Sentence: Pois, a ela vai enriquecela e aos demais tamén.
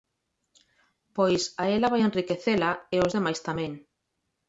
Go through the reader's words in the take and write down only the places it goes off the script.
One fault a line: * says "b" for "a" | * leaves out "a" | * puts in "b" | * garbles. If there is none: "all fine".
all fine